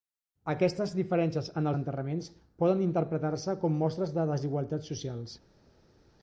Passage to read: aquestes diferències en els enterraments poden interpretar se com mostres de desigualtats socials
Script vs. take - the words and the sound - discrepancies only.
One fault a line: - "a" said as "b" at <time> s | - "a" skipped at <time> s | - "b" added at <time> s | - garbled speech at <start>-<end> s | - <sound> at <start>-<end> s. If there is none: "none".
- "els" skipped at 1.7 s